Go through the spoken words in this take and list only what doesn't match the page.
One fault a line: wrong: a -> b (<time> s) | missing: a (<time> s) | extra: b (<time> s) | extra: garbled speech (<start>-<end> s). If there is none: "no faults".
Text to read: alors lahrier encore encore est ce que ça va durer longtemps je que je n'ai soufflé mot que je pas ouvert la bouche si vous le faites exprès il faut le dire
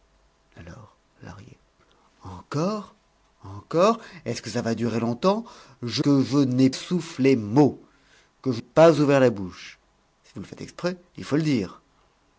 no faults